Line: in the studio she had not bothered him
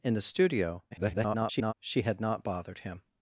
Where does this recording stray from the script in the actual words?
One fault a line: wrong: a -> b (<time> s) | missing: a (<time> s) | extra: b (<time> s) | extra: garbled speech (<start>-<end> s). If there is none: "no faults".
extra: garbled speech (0.9-1.7 s)